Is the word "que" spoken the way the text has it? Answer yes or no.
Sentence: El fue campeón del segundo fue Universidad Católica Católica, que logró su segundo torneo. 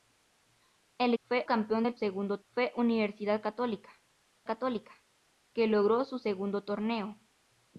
yes